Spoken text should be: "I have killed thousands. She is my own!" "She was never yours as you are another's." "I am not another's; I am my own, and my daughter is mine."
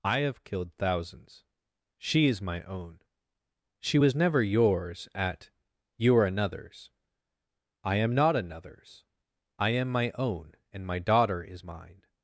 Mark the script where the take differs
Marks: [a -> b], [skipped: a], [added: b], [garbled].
"I have killed thousands. She is my own!" "She was never yours [as -> at] you are another's." "I am not another's; I am my own, and my daughter is mine."